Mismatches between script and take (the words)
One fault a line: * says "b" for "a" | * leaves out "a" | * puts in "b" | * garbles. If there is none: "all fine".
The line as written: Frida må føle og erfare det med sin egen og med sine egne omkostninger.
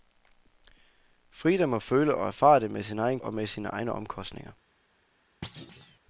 all fine